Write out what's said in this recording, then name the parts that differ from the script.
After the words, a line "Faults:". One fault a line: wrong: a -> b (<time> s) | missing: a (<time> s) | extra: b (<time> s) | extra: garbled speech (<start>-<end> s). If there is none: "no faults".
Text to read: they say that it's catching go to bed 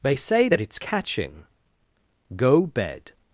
they say that it's catching go bed
Faults:
missing: to (2.7 s)